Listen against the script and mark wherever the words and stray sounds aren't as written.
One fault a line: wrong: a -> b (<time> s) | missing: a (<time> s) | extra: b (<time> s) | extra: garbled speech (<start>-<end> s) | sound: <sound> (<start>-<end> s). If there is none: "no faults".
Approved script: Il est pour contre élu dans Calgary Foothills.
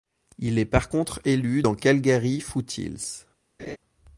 wrong: pour -> par (0.7 s)
sound: laugh (3.6-3.8 s)